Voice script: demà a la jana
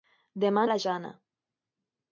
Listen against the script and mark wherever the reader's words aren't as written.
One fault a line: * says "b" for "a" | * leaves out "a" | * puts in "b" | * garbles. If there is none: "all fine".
all fine